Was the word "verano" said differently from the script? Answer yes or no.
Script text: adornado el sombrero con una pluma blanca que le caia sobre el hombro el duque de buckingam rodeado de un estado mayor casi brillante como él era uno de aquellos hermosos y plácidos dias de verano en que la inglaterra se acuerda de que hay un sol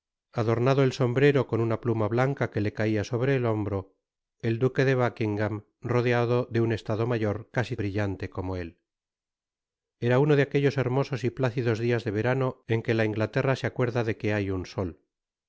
no